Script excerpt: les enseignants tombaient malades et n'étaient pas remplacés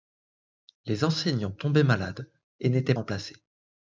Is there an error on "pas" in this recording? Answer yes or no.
yes